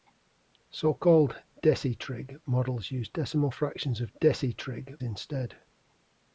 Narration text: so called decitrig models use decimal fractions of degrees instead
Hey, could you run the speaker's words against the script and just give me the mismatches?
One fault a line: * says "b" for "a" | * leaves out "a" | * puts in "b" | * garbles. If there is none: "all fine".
* says "decitrig" for "degrees"